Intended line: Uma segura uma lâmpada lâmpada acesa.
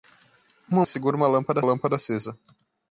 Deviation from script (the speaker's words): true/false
false